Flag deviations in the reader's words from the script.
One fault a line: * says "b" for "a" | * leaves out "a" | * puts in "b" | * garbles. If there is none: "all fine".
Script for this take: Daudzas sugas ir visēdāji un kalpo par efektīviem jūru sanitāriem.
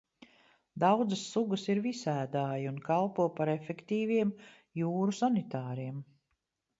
all fine